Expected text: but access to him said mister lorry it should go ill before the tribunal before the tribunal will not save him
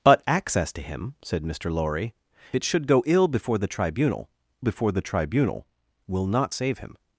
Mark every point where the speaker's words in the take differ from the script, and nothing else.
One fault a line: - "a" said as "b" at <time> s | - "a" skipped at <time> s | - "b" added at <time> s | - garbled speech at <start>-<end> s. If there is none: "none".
none